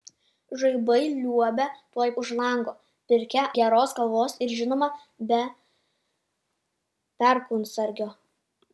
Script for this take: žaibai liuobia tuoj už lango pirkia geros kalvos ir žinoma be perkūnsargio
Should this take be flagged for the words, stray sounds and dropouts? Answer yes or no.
no